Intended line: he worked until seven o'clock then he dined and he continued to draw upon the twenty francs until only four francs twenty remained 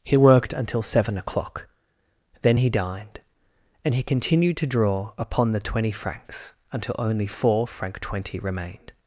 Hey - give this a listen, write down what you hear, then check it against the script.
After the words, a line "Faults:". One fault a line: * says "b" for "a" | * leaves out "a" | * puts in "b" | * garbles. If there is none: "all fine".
he worked until seven o'clock then he dined and he continued to draw upon the twenty francs until only four franc twenty remained
Faults:
* says "franc" for "francs"